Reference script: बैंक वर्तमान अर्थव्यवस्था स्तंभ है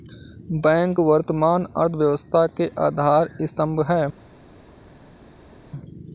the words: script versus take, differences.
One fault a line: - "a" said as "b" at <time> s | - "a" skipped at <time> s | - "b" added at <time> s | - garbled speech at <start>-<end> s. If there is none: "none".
- "के आधार" added at 2.6 s